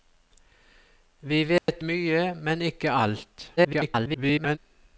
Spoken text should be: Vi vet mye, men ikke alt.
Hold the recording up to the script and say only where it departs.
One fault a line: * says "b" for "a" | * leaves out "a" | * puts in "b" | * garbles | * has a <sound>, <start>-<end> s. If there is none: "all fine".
* has a dropout, 1.6-1.7 s
* garbles